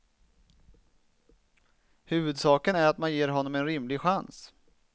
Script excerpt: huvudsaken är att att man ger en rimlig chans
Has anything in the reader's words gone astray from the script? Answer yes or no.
yes